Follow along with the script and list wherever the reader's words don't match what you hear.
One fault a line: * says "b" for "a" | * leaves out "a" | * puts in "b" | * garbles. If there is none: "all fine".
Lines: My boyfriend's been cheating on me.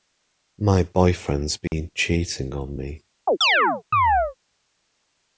all fine